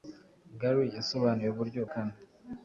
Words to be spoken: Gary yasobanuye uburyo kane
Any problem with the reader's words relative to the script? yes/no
no